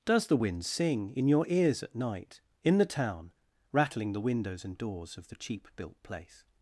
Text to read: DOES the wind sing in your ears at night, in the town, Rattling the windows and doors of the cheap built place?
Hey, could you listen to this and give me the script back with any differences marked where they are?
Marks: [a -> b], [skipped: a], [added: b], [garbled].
DOES the wind sing in your ears at night, in the town, Rattling the windows and doors of the cheap built place?